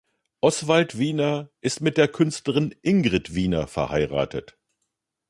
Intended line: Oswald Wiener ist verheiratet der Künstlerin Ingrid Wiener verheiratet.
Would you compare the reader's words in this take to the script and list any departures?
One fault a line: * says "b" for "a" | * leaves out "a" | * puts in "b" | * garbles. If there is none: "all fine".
* says "mit" for "verheiratet"